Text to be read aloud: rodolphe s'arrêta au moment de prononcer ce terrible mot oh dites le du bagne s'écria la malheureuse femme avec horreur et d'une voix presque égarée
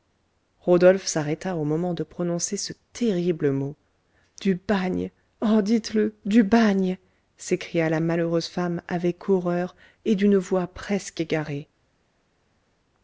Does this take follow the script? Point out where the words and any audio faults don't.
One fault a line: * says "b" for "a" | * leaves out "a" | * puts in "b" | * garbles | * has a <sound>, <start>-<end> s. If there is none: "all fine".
* puts in "du bagne"